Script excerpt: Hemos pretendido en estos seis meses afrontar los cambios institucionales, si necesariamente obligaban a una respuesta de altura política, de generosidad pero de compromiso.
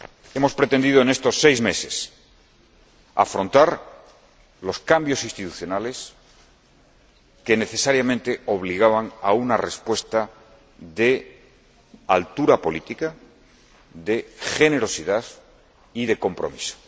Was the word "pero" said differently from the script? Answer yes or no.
yes